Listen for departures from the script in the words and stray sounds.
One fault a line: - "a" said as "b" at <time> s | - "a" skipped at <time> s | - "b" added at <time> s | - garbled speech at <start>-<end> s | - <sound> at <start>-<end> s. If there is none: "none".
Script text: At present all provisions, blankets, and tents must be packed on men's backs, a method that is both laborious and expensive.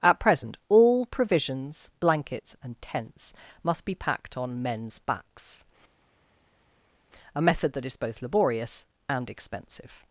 none